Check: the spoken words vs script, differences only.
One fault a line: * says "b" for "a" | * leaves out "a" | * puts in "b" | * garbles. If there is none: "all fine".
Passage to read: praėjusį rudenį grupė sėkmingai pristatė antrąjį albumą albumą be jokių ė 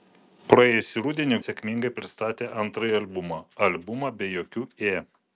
* leaves out "grupė"